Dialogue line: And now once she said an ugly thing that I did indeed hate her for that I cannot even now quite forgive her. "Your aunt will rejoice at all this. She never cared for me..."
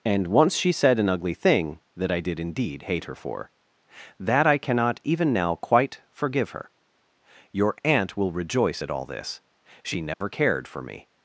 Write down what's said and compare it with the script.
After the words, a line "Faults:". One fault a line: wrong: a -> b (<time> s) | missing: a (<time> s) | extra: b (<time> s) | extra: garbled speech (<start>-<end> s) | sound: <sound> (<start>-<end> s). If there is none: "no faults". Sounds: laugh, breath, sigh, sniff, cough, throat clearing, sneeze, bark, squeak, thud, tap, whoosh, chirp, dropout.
And once she said an ugly thing that I did indeed hate her for that I cannot even now quite forgive her. "Your aunt will rejoice at all this. She never cared for me..."
Faults:
missing: now (0.3 s)
sound: dropout (10.1-10.2 s)